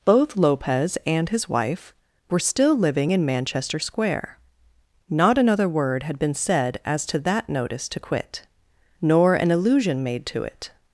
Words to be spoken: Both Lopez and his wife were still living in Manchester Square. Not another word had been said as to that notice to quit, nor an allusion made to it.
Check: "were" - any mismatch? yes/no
no